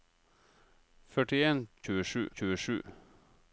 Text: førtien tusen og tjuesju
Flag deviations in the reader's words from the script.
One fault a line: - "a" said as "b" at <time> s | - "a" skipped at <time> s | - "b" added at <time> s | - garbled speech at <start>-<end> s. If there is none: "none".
- "tusen" said as "tjuesju" at 1.9 s